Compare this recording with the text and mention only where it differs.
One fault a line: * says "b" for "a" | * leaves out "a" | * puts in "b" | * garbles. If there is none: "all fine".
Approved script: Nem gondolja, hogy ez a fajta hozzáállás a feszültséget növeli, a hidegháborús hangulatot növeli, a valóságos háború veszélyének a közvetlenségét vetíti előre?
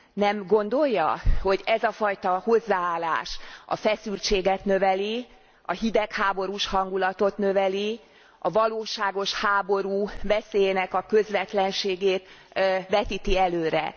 all fine